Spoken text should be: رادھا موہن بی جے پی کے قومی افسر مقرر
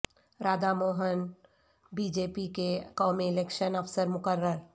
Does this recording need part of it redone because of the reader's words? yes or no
yes